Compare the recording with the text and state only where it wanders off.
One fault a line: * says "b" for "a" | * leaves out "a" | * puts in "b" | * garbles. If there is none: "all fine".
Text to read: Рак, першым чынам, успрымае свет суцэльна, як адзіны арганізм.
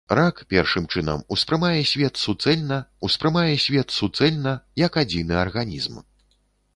* puts in "успрымае свет суцэльна"